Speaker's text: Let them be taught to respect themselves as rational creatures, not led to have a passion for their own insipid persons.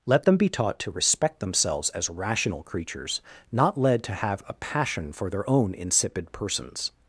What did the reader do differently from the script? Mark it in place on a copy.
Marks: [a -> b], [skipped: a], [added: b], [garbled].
Let them be taught to respect themselves as rational creatures, not led to have a passion for their own insipid persons.